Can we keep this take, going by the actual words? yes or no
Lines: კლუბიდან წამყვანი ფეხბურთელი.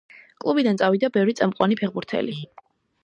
no